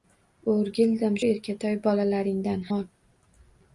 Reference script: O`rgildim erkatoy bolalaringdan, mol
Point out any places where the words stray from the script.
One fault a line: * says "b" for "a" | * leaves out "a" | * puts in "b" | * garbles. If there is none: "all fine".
all fine